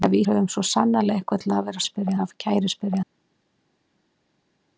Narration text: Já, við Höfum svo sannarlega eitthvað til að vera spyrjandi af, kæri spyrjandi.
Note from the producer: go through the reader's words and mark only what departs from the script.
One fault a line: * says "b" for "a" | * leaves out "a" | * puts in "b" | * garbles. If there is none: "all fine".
all fine